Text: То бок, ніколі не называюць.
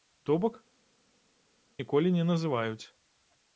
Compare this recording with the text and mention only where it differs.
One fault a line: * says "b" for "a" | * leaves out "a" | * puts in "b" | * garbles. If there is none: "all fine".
all fine